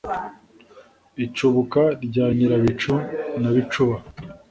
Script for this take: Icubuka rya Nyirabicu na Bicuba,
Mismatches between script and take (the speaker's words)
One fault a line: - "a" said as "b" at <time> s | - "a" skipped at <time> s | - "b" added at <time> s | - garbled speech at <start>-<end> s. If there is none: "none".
none